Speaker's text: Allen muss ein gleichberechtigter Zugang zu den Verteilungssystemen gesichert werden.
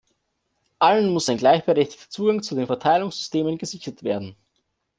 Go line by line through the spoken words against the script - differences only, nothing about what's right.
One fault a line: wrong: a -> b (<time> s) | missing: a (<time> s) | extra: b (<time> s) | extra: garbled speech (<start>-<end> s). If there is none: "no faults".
no faults